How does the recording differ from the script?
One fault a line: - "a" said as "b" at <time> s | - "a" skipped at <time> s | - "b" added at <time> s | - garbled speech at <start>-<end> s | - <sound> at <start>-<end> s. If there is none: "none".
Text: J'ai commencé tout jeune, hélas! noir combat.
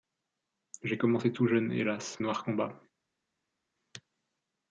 none